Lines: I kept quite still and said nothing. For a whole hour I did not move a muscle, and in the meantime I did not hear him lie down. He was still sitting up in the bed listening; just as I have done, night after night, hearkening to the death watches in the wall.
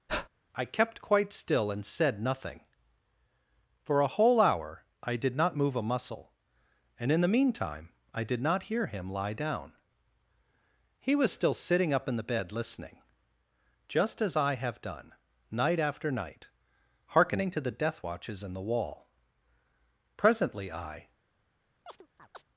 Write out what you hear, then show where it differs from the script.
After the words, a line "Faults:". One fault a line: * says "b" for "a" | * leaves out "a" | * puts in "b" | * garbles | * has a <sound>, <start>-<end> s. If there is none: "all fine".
I kept quite still and said nothing. For a whole hour I did not move a muscle, and in the meantime I did not hear him lie down. He was still sitting up in the bed listening; just as I have done, night after night, hearkening to the death watches in the wall. Presently I
Faults:
* has a breath, 0.1-0.3 s
* puts in "Presently I"
* has a chirp, 21.9-22.4 s